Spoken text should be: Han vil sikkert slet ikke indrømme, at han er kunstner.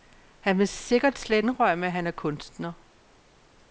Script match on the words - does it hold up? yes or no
no